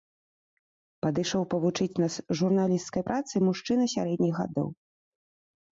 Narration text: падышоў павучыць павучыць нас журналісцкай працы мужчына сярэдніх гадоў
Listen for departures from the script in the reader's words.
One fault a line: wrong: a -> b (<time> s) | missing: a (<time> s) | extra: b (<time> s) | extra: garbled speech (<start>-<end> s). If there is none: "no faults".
missing: павучыць (2.0 s)